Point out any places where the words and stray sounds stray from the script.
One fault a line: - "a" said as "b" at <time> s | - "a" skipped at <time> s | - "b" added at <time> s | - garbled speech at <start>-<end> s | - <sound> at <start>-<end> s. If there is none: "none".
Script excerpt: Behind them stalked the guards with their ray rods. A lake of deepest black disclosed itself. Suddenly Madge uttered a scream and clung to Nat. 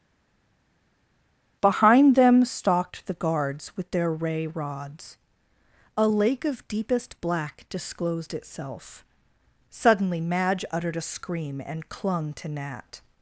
none